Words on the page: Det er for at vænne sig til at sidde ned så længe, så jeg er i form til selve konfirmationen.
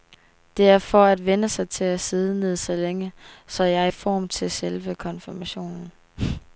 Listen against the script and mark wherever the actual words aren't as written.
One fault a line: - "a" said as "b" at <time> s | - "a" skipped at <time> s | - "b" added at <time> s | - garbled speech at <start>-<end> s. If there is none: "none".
none